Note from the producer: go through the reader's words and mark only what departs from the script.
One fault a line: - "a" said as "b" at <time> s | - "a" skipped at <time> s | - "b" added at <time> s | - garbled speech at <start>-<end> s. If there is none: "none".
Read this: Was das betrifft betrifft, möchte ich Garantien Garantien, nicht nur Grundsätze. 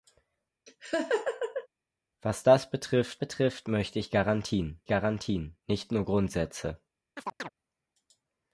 none